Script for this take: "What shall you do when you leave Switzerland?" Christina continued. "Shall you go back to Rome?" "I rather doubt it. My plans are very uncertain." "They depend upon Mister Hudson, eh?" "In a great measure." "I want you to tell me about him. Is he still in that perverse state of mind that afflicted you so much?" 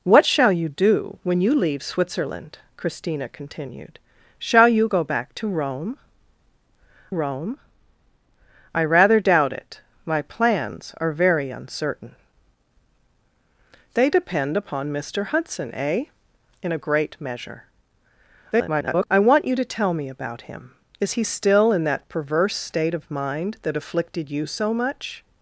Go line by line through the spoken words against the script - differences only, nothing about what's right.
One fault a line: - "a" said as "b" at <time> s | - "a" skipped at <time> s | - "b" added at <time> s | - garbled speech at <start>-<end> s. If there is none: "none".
- "Rome" added at 7.1 s
- garbled speech at 18.5-19.1 s